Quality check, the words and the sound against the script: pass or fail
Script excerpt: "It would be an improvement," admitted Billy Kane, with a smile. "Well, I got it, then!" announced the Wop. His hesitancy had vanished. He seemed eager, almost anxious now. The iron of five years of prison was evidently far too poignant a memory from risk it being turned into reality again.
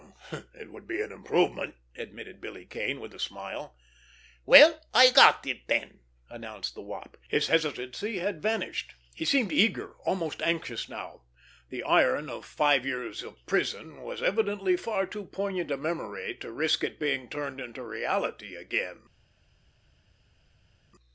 fail